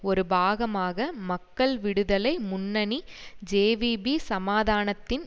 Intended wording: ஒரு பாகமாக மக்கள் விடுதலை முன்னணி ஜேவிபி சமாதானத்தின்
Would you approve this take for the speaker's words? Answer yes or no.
yes